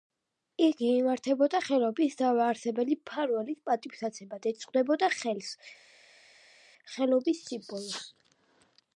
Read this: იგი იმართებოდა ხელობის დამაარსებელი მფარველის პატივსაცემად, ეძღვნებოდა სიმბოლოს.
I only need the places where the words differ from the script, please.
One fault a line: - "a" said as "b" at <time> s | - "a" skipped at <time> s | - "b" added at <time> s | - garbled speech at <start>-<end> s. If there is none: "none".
- "ხელს ხელობის" added at 5.2 s